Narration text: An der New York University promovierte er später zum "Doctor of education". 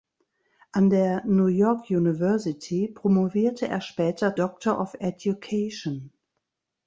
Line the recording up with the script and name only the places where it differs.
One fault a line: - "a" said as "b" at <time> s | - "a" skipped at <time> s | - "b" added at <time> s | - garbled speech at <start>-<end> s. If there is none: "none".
- "zum" skipped at 4.3 s